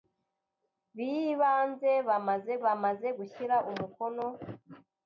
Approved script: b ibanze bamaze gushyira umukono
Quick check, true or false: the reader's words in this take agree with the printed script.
false